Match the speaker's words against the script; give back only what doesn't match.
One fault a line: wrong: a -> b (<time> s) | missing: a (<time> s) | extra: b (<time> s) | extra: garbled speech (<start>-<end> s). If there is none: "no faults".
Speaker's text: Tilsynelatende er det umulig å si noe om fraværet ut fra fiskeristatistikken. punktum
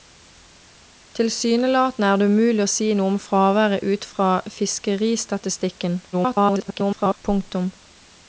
extra: garbled speech (6.1-7.2 s)